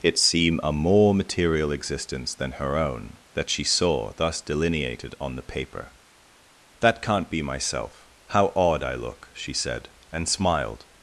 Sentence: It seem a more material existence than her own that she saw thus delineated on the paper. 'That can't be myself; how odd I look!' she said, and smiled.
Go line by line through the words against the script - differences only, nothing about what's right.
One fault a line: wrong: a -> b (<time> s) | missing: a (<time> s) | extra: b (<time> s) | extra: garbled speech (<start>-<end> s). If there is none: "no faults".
no faults